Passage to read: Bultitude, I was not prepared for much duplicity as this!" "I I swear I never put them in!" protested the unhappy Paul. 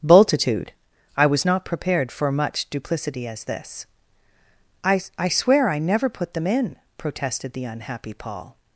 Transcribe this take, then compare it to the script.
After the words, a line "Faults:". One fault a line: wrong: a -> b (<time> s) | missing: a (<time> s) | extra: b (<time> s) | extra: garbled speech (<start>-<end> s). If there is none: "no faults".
Bultitude, I was not prepared for much duplicity as this!" "I I swear I never put them in!" protested the unhappy Paul.
Faults:
no faults